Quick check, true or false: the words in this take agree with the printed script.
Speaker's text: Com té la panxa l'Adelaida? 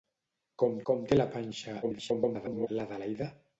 false